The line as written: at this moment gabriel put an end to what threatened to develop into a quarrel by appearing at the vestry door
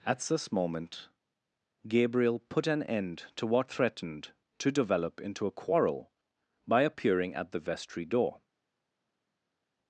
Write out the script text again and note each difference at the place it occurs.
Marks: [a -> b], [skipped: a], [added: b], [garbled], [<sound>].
at this moment gabriel put an end to what threatened to develop into a quarrel by appearing at the vestry door